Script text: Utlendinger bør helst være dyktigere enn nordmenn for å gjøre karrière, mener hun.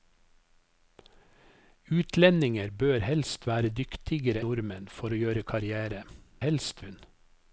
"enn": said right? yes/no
no